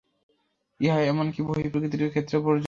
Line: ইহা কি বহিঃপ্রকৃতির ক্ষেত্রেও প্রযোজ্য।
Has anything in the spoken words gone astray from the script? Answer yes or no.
yes